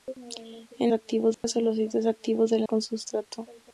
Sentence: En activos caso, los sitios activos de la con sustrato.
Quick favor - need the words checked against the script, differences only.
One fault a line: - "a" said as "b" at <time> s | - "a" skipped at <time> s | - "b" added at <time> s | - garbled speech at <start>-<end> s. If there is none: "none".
none